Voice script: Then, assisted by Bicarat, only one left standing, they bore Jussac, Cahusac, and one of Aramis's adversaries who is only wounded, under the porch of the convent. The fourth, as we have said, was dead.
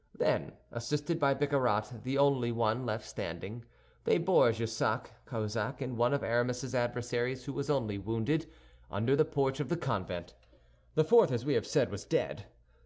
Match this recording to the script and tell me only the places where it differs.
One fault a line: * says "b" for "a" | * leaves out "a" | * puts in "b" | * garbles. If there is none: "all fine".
* puts in "the"
* says "was" for "is"